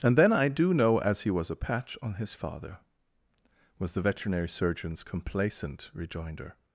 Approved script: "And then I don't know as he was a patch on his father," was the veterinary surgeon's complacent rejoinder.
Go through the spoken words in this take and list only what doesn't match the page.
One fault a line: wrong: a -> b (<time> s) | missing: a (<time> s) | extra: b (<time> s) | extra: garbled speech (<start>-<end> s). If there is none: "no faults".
wrong: don't -> do (0.5 s)